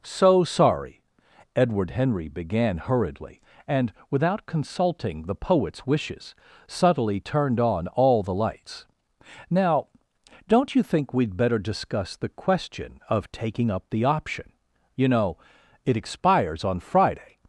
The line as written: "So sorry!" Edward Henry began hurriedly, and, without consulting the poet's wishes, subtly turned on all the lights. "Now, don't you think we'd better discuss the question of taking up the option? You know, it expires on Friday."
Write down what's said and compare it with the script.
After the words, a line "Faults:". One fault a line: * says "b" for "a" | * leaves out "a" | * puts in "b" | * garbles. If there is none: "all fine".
"So sorry!" Edward Henry began hurriedly, and, without consulting the poet's wishes, subtly turned on all the lights. "Now, don't you think we'd better discuss the question of taking up the option? You know, it expires on Friday."
Faults:
all fine